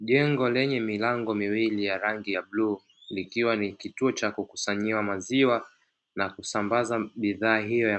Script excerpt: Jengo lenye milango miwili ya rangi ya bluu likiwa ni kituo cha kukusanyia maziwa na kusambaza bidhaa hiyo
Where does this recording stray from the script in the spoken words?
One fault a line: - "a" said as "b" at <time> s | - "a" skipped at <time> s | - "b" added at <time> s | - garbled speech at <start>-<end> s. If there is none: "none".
none